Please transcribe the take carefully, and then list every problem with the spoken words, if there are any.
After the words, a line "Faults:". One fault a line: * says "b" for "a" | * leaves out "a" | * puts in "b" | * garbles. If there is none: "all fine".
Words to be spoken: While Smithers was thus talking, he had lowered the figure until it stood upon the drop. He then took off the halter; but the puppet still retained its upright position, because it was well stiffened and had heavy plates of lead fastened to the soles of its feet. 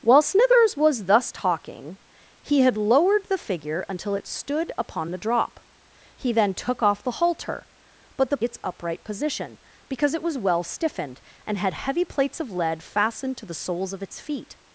While Smithers was thus talking, he had lowered the figure until it stood upon the drop. He then took off the halter; but the its upright position, because it was well stiffened and had heavy plates of lead fastened to the soles of its feet.
Faults:
* leaves out "puppet still retained"